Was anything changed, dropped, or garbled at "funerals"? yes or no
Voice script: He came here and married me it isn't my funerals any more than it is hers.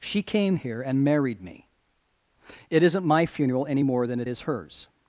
yes